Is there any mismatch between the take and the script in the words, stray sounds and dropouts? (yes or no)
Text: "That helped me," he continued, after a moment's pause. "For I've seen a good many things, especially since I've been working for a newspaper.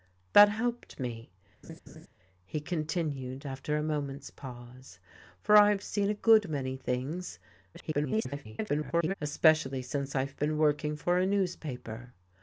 yes